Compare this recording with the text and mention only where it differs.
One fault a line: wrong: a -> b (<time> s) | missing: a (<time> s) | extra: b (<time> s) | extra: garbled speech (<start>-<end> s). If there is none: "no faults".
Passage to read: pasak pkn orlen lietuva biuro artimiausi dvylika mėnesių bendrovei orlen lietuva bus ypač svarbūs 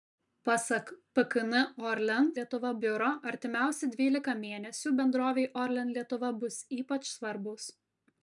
no faults